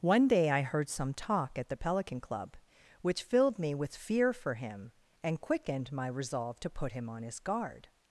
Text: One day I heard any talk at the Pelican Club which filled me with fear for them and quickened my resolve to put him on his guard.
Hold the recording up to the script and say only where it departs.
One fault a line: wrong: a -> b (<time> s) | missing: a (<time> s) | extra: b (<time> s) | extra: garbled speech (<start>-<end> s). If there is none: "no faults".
wrong: any -> some (0.9 s)
wrong: them -> him (4.5 s)